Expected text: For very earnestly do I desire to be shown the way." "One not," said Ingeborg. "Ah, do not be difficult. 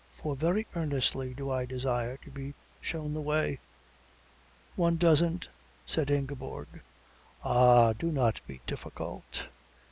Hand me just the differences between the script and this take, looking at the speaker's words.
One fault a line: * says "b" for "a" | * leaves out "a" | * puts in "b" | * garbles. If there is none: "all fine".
* says "doesn't" for "not"